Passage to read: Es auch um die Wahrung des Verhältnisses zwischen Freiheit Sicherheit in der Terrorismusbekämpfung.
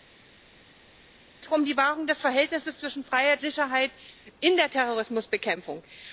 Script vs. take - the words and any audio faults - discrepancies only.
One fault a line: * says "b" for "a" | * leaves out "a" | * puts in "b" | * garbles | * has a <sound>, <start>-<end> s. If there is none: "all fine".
all fine